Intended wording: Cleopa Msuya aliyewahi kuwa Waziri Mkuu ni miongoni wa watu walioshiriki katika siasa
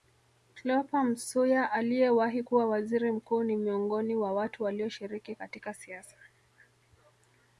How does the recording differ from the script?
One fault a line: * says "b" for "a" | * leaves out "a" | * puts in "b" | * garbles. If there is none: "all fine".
all fine